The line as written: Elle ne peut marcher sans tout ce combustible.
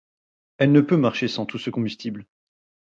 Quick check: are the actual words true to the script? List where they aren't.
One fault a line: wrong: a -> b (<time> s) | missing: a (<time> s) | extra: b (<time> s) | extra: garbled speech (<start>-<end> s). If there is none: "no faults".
no faults